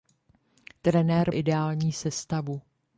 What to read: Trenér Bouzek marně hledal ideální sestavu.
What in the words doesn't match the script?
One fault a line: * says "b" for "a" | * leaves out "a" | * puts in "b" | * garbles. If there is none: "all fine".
* leaves out "Bouzek marně hledal"